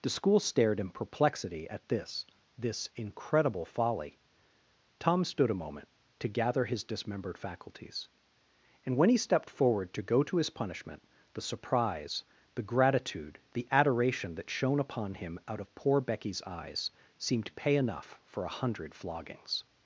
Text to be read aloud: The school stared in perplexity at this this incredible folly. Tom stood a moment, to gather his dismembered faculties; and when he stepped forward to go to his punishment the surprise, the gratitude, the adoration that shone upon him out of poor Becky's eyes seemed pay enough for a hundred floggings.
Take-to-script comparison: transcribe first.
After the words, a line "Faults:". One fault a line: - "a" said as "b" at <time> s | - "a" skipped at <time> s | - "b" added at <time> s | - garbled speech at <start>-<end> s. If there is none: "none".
The school stared in perplexity at this this incredible folly. Tom stood a moment, to gather his dismembered faculties; and when he stepped forward to go to his punishment the surprise, the gratitude, the adoration that shone upon him out of poor Becky's eyes seemed pay enough for a hundred floggings.
Faults:
none